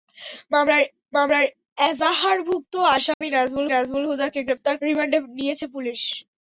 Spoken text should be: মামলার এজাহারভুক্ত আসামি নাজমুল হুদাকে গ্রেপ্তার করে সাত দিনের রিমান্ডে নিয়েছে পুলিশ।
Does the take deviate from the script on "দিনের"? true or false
true